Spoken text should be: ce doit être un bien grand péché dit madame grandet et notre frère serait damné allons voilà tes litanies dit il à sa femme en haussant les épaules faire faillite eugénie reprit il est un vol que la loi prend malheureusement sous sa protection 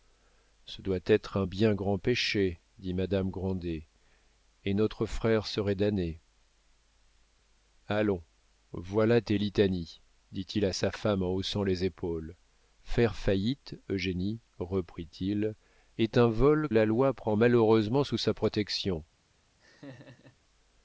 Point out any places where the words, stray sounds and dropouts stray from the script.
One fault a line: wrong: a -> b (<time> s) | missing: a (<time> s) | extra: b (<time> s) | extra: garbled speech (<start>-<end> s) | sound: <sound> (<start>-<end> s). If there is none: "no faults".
missing: que (16.7 s)
sound: laugh (19.6-20.4 s)